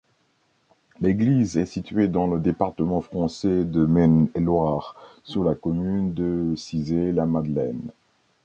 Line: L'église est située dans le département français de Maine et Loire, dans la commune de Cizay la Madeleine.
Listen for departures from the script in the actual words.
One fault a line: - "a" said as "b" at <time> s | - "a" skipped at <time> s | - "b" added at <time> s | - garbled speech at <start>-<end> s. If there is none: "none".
- "dans" said as "sur" at 5.2 s